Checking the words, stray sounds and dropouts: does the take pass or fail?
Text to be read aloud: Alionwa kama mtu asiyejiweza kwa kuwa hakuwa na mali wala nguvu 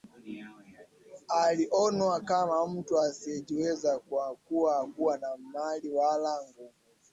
pass